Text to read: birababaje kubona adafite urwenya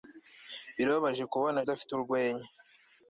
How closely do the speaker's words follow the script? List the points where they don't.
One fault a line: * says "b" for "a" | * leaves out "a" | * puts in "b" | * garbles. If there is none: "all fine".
all fine